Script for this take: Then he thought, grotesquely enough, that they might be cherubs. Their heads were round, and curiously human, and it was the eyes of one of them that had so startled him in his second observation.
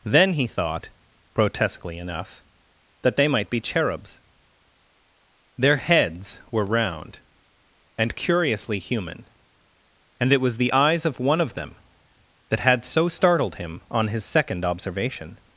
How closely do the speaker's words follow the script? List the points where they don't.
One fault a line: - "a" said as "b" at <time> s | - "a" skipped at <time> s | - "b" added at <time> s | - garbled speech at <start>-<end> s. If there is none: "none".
- "in" said as "on" at 13.9 s